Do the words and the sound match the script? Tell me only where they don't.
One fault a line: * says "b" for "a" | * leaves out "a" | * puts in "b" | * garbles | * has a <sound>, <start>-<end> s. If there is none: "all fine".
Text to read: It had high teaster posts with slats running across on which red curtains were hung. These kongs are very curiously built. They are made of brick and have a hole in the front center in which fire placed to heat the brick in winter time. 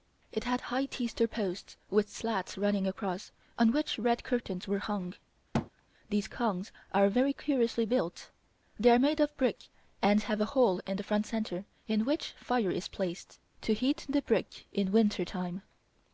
* has a thud, 5.5-5.7 s
* puts in "is"